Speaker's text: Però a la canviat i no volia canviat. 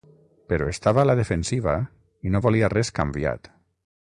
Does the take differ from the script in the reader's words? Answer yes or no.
yes